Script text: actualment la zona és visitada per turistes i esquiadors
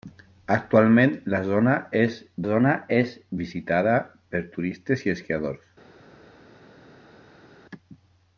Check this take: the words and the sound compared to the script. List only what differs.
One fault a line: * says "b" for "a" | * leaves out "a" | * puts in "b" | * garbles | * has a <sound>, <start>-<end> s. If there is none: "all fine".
* puts in "zona és"